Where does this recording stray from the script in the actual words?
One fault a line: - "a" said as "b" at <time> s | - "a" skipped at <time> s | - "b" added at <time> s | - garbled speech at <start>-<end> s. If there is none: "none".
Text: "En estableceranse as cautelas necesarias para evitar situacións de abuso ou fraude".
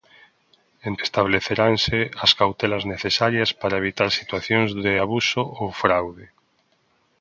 none